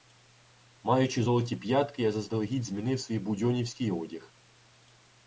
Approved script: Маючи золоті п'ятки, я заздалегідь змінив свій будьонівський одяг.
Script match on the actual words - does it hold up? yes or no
yes